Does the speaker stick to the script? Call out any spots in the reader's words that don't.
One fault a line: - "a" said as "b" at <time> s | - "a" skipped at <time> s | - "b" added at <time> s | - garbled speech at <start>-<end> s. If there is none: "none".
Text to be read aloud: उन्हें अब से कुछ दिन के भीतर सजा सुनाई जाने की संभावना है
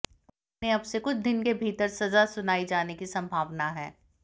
none